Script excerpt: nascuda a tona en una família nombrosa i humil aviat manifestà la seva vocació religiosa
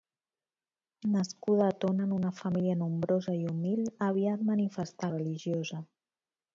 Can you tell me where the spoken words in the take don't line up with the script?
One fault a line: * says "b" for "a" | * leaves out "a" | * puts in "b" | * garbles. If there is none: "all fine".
* leaves out "la seva vocació"